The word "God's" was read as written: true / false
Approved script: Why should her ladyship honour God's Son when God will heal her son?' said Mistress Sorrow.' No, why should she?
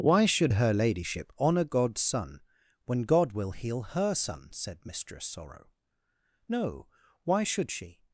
true